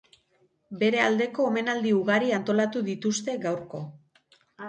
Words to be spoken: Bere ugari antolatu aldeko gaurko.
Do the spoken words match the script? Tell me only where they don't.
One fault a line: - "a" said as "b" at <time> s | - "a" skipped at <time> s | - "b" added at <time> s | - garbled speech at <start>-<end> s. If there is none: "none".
- "aldeko omenaldi" added at 1.1 s
- "aldeko" said as "dituzte" at 2.9 s